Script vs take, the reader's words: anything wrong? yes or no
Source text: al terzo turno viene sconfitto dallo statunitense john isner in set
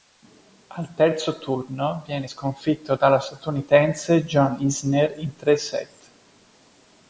yes